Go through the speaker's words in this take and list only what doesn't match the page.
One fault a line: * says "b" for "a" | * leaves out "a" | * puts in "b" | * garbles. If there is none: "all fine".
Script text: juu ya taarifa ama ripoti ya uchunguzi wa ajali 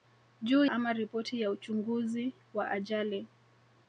* leaves out "ya taarifa"